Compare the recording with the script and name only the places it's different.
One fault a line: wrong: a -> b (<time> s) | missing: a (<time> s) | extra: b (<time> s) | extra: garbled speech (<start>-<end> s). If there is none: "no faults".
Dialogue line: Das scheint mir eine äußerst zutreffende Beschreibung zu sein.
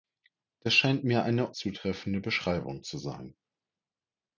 missing: äußerst (1.6 s)